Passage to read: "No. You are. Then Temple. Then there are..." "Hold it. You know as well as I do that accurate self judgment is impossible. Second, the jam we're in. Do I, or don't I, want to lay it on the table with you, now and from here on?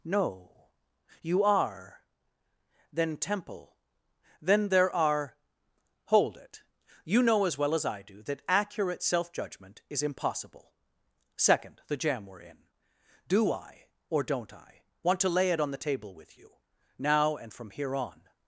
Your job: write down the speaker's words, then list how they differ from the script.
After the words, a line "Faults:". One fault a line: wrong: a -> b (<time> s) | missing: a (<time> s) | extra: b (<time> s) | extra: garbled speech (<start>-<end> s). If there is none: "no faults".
"No. You are. Then Temple. Then there are..." "Hold it. You know as well as I do that accurate self judgment is impossible. Second, the jam we're in. Do I, or don't I, want to lay it on the table with you, now and from here on?
Faults:
no faults